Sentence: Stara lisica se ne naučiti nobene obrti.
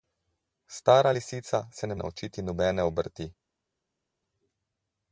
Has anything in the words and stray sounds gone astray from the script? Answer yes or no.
no